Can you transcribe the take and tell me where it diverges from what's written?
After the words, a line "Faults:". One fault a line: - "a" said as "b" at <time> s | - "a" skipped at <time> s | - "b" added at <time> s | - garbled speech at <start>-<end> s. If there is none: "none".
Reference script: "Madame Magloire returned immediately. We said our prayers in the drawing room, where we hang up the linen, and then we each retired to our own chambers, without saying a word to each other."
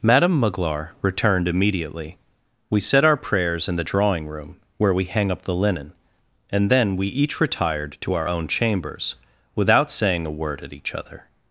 "Madame Magloire returned immediately. We said our prayers in the drawing room, where we hang up the linen, and then we each retired to our own chambers, without saying a word at each other."
Faults:
- "to" said as "at" at 10.6 s